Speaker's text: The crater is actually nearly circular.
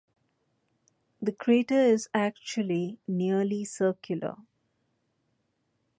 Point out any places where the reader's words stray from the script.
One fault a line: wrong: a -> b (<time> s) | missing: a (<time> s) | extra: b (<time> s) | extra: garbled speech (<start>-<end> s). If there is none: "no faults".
no faults